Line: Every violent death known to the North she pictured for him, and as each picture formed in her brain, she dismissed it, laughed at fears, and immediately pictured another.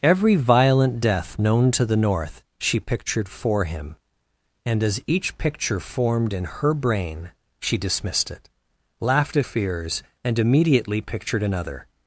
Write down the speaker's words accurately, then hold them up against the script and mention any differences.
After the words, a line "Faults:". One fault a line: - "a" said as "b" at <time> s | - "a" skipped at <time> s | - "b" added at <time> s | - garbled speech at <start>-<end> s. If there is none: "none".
Every violent death known to the North she pictured for him, and as each picture formed in her brain, she dismissed it, laughed at fears, and immediately pictured another.
Faults:
none